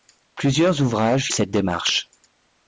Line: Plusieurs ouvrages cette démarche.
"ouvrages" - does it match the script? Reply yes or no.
yes